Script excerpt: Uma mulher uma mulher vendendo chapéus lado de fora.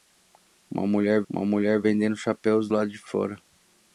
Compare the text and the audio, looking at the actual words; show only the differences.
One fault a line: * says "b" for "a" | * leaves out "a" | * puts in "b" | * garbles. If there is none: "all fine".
all fine